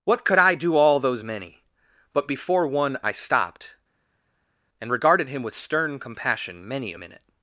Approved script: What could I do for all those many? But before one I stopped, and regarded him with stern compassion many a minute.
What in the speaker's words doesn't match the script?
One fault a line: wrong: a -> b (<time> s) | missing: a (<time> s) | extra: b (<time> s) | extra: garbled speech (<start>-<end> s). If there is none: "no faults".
missing: for (0.8 s)